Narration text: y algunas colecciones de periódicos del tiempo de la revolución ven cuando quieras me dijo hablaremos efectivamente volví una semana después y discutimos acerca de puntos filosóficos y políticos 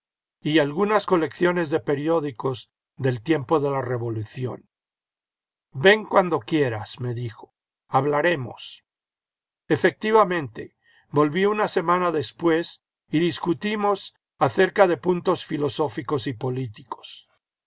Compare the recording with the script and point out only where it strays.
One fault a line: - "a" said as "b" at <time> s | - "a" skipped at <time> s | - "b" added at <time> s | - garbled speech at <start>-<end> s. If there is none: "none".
none